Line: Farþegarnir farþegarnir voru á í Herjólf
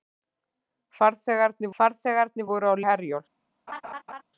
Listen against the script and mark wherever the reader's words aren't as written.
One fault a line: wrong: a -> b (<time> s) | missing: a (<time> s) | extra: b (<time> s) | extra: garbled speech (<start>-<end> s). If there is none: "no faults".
no faults